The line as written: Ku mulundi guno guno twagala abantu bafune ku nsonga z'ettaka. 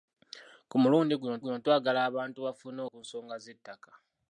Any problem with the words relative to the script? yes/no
no